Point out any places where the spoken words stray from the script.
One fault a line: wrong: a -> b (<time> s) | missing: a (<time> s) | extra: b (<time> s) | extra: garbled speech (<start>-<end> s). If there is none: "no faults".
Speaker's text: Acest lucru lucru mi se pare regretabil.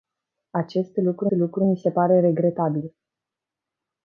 no faults